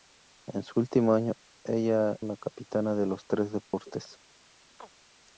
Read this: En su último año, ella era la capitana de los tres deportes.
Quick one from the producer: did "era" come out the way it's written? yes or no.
no